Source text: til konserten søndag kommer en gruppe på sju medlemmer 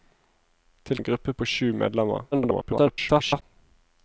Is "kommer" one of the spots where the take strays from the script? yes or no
yes